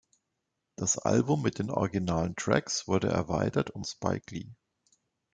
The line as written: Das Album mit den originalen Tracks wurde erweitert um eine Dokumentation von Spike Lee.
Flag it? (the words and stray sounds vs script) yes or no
yes